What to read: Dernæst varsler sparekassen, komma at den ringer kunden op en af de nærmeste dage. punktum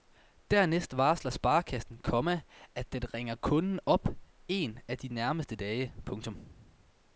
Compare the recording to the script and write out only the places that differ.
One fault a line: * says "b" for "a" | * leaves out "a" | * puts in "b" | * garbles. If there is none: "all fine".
all fine